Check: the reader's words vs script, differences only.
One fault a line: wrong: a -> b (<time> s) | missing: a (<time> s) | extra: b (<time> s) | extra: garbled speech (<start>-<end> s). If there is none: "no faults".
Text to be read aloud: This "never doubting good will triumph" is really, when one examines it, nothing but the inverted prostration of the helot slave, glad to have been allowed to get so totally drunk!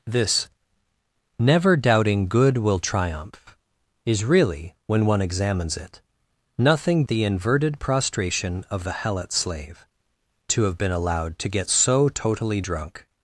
missing: but (7.0 s)
missing: glad (9.9 s)